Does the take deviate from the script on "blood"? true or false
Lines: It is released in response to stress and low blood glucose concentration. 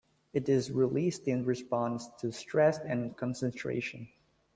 true